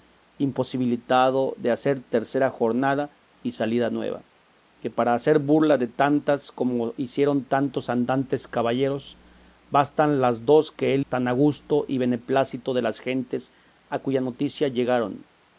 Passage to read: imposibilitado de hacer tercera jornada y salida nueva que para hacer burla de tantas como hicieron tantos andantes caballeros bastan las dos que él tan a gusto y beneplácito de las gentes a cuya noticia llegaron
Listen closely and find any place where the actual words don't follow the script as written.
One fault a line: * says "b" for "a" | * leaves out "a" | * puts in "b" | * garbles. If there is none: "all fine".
all fine